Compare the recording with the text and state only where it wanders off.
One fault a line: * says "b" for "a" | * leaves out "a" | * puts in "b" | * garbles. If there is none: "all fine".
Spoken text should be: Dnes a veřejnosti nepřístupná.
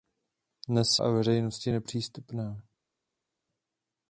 all fine